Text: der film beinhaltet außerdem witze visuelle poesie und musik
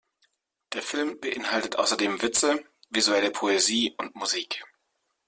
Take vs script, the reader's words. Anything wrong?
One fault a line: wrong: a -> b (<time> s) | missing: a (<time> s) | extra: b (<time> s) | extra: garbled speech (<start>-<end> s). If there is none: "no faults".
no faults